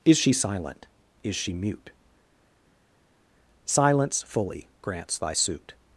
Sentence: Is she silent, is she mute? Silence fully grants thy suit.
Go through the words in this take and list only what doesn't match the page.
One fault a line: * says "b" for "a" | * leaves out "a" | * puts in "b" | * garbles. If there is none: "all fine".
all fine